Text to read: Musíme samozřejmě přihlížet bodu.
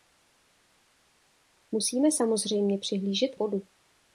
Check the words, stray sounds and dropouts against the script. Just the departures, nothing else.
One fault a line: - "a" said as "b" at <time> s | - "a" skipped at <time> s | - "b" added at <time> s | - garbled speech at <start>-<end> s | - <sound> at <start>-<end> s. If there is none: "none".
none